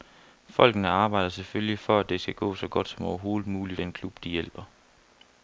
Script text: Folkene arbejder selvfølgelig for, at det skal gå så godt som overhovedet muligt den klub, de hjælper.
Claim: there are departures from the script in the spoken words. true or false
false